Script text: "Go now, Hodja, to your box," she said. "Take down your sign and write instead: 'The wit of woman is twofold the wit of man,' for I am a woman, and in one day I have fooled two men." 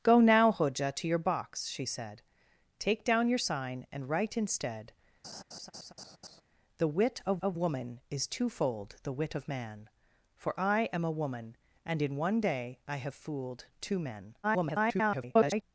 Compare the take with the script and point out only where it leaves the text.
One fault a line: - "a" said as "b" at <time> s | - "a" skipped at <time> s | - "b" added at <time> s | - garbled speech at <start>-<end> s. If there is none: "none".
- "of" added at 7.4 s
- garbled speech at 14.4-15.6 s